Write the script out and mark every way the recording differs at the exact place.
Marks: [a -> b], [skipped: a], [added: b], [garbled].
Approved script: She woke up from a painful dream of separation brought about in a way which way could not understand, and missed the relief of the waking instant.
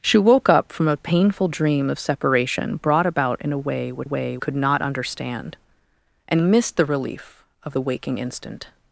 She woke up from a painful dream of separation brought about in a way which way could not understand, and missed the relief of the waking instant.